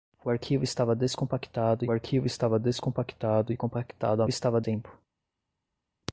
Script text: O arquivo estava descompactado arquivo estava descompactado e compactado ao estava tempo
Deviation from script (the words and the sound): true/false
false